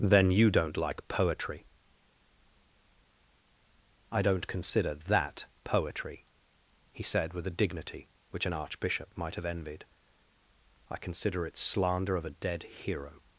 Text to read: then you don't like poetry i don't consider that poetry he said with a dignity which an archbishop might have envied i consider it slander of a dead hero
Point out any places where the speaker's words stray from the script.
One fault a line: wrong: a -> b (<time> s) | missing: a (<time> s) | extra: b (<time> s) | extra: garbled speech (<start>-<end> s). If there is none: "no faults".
no faults